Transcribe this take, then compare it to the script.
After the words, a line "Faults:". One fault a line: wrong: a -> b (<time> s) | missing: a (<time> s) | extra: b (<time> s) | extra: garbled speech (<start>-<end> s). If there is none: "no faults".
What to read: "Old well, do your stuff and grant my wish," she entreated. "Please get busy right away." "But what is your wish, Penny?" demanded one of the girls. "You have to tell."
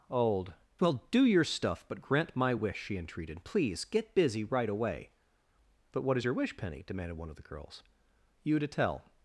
"Old well, do your stuff but grant my wish," she entreated. "Please get busy right away." "But what is your wish, Penny?" demanded one of the girls. "You to tell."
Faults:
wrong: and -> but (1.9 s)
missing: have (8.6 s)